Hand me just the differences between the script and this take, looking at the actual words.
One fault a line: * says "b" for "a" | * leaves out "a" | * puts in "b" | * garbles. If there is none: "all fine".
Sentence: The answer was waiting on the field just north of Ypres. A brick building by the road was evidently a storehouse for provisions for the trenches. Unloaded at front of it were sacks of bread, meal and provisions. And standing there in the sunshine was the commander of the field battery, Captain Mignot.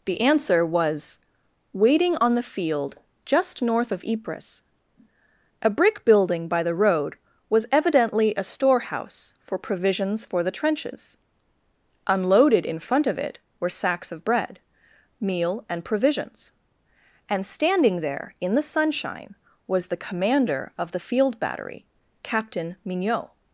* says "in" for "at"